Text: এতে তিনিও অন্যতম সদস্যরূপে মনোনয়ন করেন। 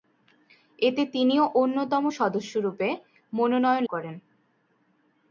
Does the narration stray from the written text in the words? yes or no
no